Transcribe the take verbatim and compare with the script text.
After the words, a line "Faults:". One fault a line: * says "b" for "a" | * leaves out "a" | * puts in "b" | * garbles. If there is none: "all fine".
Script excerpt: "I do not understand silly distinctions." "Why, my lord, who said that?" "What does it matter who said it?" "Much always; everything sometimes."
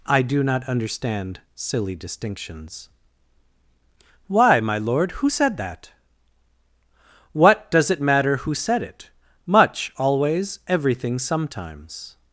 "I do not understand silly distinctions." "Why, my lord, who said that?" "What does it matter who said it?" "Much always; everything sometimes."
Faults:
all fine